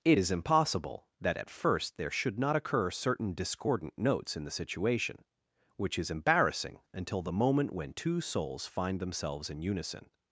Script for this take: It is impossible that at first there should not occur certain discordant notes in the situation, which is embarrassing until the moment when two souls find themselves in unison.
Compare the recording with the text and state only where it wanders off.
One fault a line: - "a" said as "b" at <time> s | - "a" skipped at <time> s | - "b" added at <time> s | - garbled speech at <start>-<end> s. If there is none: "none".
none